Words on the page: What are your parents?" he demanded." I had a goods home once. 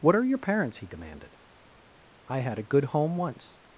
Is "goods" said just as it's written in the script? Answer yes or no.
no